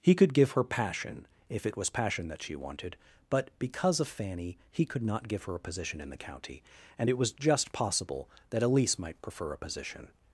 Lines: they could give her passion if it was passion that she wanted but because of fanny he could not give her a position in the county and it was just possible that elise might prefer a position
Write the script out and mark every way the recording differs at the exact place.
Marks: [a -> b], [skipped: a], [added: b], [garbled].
[they -> he] could give her passion if it was passion that she wanted but because of fanny he could not give her a position in the county and it was just possible that elise might prefer a position